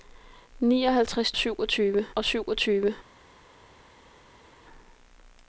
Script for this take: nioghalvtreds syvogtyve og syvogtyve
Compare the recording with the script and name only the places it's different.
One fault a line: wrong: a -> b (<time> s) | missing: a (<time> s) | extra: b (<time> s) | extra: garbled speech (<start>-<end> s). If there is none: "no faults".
no faults